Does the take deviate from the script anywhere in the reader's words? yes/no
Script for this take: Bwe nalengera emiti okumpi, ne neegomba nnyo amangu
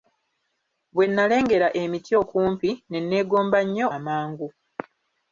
no